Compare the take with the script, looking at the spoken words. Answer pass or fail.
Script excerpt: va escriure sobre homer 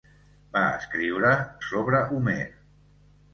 pass